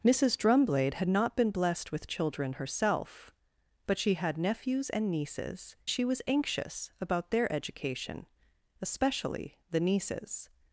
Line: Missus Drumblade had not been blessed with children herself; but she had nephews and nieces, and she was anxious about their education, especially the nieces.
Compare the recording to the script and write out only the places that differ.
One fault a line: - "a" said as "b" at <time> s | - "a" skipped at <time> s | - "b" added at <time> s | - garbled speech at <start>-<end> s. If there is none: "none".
- "and" skipped at 5.8 s